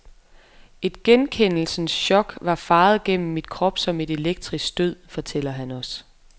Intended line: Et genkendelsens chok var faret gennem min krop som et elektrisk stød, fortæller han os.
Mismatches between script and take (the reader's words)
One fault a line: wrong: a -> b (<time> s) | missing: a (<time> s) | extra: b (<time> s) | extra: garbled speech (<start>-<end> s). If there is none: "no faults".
no faults